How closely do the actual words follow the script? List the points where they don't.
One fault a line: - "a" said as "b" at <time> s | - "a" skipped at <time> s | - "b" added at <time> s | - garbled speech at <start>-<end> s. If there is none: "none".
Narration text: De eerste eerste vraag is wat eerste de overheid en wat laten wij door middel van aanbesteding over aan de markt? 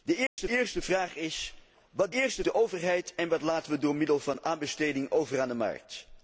none